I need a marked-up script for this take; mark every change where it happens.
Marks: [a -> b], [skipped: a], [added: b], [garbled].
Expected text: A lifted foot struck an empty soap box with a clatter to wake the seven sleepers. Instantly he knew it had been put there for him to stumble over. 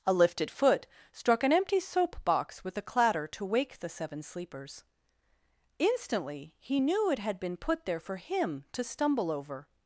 A lifted foot struck an empty soap box with a clatter to wake the seven sleepers. Instantly he knew it had been put there for him to stumble over.